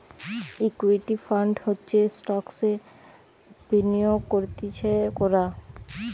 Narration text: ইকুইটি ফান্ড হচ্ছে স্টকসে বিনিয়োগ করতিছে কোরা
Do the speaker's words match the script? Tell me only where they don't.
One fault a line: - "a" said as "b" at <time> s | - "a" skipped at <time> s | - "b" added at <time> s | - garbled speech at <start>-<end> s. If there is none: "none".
none